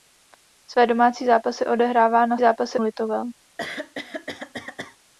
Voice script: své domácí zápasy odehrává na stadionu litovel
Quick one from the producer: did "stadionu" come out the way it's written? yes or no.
no